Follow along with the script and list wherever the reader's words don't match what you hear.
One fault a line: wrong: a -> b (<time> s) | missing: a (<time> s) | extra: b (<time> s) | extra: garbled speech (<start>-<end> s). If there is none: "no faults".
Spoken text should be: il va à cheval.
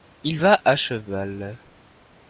no faults